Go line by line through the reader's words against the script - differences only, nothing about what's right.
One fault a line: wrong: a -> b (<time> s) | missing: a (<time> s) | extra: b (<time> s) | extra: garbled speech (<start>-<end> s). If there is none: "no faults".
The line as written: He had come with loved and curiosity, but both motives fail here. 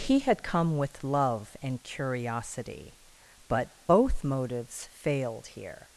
wrong: loved -> love (1.0 s)
wrong: fail -> failed (4.9 s)